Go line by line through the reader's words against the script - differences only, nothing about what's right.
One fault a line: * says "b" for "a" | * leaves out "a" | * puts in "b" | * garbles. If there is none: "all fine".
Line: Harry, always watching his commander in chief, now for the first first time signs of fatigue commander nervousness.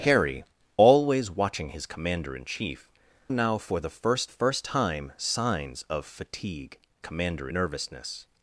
all fine